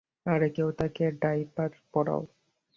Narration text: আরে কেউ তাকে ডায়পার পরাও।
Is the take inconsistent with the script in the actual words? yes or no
no